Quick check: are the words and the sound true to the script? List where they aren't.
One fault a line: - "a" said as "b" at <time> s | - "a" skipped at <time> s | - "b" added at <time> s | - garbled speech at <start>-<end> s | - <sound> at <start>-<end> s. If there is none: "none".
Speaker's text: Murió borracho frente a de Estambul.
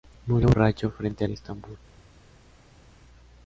none